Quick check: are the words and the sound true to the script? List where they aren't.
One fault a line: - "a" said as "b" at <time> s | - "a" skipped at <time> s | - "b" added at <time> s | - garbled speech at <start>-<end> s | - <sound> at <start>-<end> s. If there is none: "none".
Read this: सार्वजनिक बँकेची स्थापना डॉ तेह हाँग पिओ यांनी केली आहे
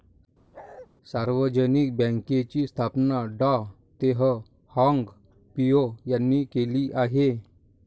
- bark at 0.5-0.9 s